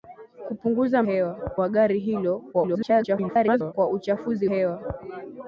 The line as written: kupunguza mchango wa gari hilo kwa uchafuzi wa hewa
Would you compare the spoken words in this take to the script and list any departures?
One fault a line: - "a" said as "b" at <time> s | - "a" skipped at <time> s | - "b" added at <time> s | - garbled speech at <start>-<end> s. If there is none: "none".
- "mchango" said as "hewa" at 1.0 s
- garbled speech at 2.5-3.7 s
- "wa" skipped at 4.5 s